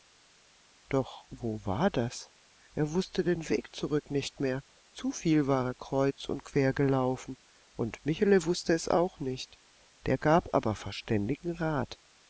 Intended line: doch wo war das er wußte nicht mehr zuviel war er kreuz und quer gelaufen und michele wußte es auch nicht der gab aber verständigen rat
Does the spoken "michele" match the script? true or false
true